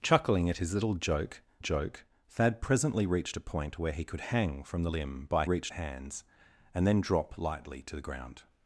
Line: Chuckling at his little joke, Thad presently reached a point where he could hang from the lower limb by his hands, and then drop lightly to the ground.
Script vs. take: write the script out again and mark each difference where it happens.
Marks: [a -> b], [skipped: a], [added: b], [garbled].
Chuckling at his little joke, [added: joke] Thad presently reached a point where he could hang from the [skipped: lower] limb by [his -> reached] hands, and then drop lightly to the ground.